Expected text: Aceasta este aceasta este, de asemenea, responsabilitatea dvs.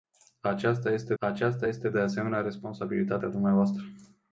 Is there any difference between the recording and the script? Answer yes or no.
no